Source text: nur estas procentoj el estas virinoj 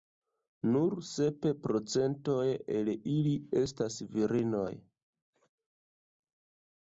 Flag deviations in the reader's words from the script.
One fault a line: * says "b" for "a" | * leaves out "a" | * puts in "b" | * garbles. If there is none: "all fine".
* says "sep" for "estas"
* puts in "ili"